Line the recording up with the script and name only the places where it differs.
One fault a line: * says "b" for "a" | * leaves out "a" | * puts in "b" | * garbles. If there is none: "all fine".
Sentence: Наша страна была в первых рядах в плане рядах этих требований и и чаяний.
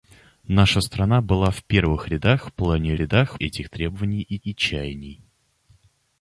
all fine